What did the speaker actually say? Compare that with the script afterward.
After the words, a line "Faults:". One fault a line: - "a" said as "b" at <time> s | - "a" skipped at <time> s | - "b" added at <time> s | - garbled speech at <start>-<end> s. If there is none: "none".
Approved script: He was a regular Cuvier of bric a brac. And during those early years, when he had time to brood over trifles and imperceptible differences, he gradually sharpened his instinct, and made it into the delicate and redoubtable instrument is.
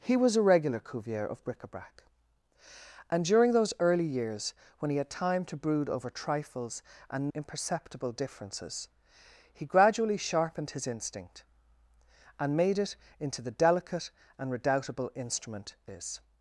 He was a regular Cuvier of bric a brac. And during those early years, when he had time to brood over trifles and imperceptible differences, he gradually sharpened his instinct, and made it into the delicate and redoubtable instrument is.
Faults:
none